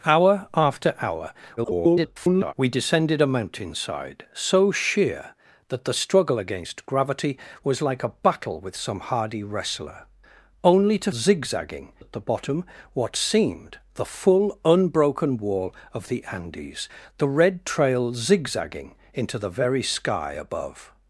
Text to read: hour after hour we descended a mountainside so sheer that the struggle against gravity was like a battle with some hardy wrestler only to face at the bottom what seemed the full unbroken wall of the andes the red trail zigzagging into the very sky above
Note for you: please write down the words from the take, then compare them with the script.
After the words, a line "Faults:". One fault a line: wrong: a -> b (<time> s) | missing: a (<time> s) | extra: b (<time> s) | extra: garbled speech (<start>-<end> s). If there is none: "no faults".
hour after hour [garbled] we descended a mountainside so sheer that the struggle against gravity was like a battle with some hardy wrestler only to zigzagging at the bottom what seemed the full unbroken wall of the andes the red trail zigzagging into the very sky above
Faults:
extra: garbled speech (1.6-2.5 s)
wrong: face -> zigzagging (11.1 s)